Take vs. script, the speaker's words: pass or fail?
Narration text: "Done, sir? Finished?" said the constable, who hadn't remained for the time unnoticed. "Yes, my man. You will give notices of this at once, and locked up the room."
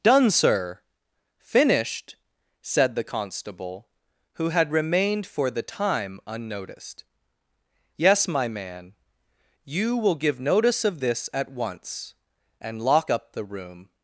fail